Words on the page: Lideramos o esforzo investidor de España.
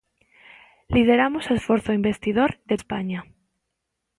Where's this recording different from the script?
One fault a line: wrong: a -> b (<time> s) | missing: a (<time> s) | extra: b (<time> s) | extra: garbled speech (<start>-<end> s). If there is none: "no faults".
no faults